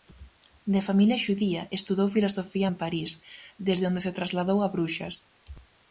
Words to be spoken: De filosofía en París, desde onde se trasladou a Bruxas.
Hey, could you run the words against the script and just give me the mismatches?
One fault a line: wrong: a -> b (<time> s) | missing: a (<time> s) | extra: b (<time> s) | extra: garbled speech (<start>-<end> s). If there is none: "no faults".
extra: familia xudía estudou (0.9 s)